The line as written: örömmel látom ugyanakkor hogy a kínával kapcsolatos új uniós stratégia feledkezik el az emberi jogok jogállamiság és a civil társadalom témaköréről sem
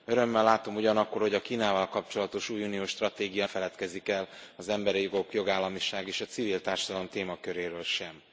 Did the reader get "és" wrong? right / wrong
right